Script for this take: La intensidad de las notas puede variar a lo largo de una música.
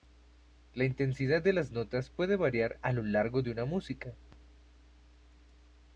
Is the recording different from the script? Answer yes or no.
no